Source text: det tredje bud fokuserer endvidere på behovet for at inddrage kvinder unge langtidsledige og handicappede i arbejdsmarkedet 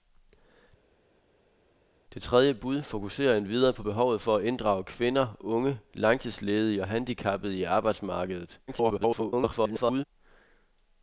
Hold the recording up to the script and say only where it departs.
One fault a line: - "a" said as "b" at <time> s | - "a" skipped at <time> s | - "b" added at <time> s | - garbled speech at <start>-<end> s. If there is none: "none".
- garbled speech at 8.7-10.0 s